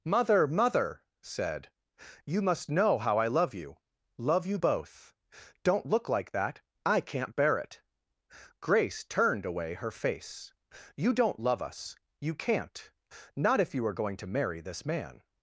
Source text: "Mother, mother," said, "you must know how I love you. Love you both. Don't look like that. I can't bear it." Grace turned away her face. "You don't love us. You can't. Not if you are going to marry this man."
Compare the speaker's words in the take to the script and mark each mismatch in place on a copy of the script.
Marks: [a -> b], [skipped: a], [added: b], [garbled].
"Mother, mother," said, "you must know how I love you. Love you both. Don't look like that. I can't bear it." Grace turned away her face. "You don't love us. You can't. Not if you are going to marry this man."